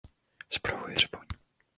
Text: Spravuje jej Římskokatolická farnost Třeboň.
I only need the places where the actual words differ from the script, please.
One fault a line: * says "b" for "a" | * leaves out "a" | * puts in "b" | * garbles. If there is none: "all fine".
* leaves out "jej Římskokatolická farnost"